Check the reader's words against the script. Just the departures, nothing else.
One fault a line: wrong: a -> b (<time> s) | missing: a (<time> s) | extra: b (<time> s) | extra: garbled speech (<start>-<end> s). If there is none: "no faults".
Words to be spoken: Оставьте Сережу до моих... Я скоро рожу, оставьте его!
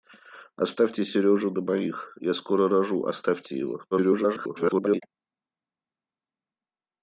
extra: garbled speech (3.9-5.0 s)